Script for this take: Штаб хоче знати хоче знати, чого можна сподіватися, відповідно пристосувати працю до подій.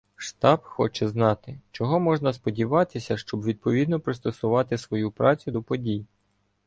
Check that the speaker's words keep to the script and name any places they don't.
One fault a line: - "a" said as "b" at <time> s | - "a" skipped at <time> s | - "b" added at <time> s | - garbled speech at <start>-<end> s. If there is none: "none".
- "хоче знати" skipped at 1.6 s
- "щоб" added at 3.2 s
- "свою" added at 4.8 s